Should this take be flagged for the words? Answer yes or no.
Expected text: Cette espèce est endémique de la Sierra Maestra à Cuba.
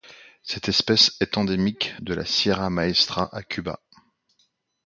no